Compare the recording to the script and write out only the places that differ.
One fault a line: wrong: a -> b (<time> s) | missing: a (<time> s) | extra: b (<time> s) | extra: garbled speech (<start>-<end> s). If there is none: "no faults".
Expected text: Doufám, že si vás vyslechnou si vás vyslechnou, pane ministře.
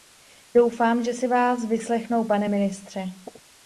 missing: si vás vyslechnou (2.3 s)